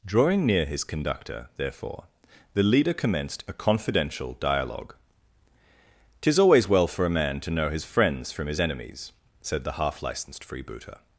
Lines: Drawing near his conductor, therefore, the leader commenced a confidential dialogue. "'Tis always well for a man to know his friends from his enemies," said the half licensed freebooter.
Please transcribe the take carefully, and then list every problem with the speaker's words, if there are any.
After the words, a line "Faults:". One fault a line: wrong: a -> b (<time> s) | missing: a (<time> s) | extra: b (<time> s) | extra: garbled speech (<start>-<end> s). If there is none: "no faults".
Drawing near his conductor, therefore, the leader commenced a confidential dialogue. "'Tis always well for a man to know his friends from his enemies," said the half licensed freebooter.
Faults:
no faults